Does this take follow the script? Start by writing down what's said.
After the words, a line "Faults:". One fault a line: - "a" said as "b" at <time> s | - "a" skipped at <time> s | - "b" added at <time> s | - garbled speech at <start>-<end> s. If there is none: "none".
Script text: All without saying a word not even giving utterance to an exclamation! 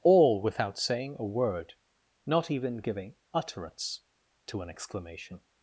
All without saying a word not even giving utterance to an exclamation!
Faults:
none